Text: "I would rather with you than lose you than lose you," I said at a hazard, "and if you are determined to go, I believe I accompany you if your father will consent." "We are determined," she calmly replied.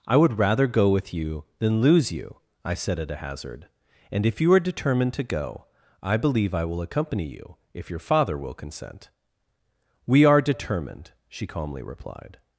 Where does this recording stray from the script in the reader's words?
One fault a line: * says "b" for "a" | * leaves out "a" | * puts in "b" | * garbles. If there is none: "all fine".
* puts in "go"
* leaves out "than lose you"
* puts in "will"